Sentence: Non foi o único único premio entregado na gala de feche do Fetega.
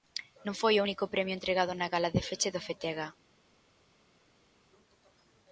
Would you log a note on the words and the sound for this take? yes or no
yes